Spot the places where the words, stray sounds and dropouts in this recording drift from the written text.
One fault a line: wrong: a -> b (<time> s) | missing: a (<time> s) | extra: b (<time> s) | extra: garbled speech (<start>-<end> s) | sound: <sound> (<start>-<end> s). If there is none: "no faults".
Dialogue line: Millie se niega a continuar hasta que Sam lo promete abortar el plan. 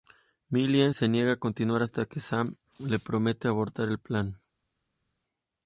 wrong: lo -> le (2.8 s)